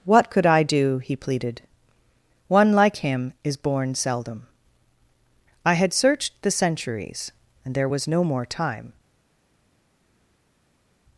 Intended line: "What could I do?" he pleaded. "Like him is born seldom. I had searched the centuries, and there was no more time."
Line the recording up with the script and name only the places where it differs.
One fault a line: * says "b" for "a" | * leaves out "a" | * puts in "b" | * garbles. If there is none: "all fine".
* puts in "One"